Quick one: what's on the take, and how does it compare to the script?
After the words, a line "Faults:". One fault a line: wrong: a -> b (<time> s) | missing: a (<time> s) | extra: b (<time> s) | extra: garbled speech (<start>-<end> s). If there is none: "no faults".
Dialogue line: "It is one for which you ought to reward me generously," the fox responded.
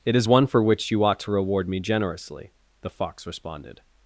"It is one for which you ought to reward me generously," the fox responded.
Faults:
no faults